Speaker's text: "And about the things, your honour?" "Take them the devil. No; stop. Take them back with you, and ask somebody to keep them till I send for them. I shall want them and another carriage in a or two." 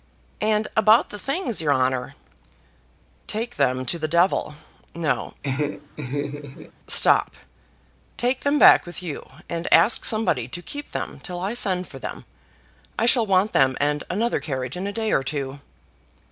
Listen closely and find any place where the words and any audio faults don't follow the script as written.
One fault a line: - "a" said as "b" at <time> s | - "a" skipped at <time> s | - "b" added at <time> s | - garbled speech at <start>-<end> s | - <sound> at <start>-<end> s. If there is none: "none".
- "to" added at 3.9 s
- laugh at 5.4-6.7 s
- "day" added at 14.9 s